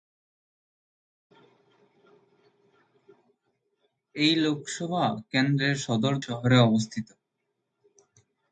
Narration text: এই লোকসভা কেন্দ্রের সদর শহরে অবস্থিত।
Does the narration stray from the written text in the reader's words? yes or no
no